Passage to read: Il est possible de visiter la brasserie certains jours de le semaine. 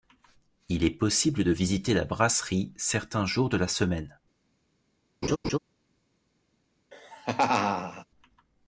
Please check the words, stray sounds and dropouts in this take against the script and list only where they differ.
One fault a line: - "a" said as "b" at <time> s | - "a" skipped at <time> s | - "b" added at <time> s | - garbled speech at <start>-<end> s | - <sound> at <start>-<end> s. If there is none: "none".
- "le" said as "la" at 3.6 s
- laugh at 5.2-5.6 s
- laugh at 6.9-8.1 s